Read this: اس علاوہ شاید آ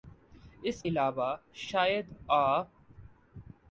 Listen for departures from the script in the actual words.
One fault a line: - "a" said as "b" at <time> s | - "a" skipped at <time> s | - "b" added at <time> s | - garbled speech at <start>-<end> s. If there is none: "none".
none